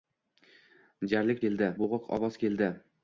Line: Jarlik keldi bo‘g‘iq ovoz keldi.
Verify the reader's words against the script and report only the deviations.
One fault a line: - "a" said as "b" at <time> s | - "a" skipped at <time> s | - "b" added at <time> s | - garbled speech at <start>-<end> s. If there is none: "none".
none